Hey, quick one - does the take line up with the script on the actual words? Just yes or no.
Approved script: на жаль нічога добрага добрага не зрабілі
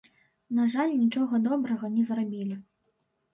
no